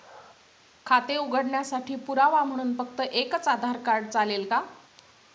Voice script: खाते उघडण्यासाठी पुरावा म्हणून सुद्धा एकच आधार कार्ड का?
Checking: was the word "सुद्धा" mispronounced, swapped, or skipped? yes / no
yes